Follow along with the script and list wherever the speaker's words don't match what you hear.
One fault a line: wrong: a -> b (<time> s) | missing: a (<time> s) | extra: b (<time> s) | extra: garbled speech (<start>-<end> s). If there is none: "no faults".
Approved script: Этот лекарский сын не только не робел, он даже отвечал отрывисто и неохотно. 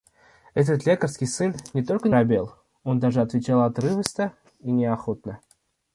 missing: не (2.1 s)